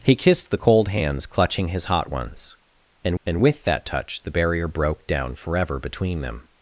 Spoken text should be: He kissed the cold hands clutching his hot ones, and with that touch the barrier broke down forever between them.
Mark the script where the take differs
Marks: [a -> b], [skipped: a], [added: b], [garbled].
He kissed the cold hands clutching his hot ones, and [added: and] with that touch the barrier broke down forever between them.